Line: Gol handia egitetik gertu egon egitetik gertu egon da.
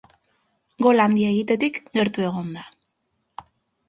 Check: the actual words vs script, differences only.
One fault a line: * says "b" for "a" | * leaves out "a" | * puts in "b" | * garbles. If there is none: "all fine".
* leaves out "egitetik gertu egon"